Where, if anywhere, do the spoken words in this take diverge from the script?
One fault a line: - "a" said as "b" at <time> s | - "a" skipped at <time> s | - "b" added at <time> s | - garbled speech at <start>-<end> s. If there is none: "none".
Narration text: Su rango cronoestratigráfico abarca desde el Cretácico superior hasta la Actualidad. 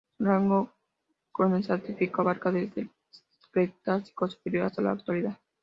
none